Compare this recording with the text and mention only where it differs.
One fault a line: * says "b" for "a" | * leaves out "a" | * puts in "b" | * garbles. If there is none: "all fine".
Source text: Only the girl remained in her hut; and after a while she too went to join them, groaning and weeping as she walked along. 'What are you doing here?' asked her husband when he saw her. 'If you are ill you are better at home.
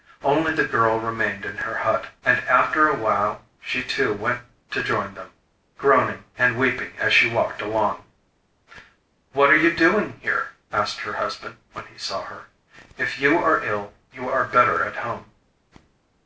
all fine